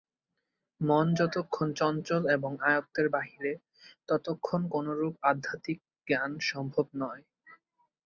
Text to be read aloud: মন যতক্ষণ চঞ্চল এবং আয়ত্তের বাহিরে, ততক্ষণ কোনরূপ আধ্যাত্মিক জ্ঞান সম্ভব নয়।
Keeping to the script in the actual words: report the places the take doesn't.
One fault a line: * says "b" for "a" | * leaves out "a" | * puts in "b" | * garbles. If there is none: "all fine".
all fine